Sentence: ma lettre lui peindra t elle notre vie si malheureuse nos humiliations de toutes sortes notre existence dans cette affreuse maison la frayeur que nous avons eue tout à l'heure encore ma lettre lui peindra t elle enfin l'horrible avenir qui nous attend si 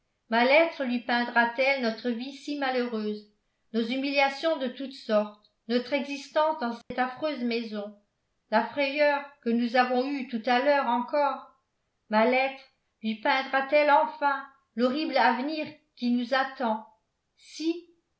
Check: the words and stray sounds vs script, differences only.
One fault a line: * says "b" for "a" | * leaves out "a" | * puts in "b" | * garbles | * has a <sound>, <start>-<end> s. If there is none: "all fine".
* has a dropout, 6.8-6.9 s